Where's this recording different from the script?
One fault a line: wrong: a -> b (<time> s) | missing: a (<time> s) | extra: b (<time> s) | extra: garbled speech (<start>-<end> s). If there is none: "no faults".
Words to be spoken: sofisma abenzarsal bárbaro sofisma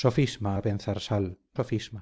missing: bárbaro (1.3 s)